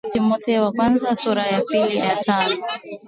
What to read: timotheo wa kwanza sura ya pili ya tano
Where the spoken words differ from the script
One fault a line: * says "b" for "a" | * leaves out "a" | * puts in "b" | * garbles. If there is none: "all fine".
all fine